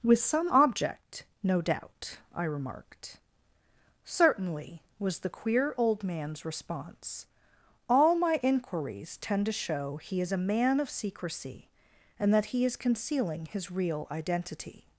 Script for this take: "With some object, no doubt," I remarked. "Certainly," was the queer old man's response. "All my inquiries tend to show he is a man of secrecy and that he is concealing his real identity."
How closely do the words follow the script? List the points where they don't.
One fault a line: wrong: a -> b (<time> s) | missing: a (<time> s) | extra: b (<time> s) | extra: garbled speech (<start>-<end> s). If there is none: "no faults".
no faults